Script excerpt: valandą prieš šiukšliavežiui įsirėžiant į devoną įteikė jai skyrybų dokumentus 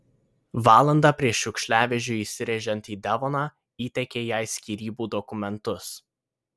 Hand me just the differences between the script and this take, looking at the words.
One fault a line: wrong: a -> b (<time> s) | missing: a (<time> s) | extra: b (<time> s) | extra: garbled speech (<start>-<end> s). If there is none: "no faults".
no faults